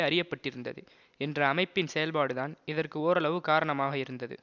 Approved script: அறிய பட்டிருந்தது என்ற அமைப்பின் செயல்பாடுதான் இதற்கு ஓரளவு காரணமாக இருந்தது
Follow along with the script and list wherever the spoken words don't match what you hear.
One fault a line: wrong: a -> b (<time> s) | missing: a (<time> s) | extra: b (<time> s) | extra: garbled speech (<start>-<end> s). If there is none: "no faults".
no faults